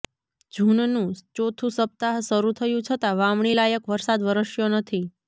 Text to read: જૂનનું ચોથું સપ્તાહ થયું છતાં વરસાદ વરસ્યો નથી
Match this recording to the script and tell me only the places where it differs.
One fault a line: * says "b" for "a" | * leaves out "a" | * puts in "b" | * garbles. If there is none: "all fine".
* puts in "શરૂ"
* puts in "વાવણી લાયક"